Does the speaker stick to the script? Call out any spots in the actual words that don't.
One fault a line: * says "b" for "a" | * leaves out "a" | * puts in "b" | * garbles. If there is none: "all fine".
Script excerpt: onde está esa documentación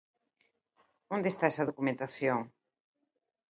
all fine